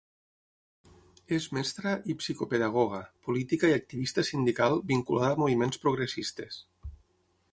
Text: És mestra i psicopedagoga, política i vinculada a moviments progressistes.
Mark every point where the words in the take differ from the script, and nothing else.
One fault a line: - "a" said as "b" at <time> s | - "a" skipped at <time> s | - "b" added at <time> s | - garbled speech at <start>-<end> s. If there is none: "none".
- "activista sindical" added at 3.8 s